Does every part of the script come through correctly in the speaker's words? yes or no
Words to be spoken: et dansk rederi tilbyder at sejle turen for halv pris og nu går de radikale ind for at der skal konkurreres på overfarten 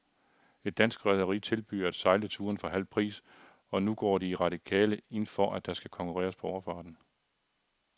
yes